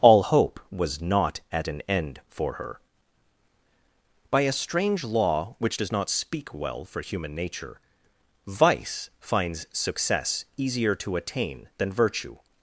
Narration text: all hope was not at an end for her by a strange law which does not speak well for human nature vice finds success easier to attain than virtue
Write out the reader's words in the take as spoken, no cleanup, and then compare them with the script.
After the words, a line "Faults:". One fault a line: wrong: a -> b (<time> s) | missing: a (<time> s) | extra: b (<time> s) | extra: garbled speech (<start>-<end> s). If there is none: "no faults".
all hope was not at an end for her by a strange law which does not speak well for human nature vice finds success easier to attain than virtue
Faults:
no faults